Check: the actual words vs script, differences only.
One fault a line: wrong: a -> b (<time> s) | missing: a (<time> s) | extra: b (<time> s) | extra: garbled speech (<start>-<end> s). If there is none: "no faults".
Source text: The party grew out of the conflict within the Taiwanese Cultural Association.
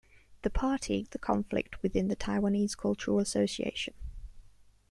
missing: grew out (1.0 s)